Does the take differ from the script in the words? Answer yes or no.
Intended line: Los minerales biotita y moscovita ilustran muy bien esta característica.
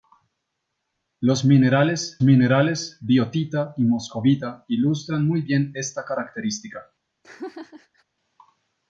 yes